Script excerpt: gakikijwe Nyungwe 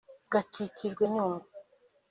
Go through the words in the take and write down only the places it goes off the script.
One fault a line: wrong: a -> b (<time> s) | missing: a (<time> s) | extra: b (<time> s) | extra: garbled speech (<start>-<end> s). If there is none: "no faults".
no faults